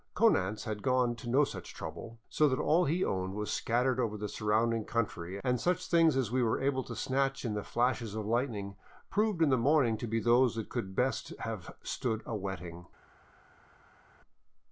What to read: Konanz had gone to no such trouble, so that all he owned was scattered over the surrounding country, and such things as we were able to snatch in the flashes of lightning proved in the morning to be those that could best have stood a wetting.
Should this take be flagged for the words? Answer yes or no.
no